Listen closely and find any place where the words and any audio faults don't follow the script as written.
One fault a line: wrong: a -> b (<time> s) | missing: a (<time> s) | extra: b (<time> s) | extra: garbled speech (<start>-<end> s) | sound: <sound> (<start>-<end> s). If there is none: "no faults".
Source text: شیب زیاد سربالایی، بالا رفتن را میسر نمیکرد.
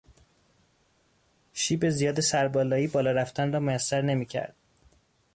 no faults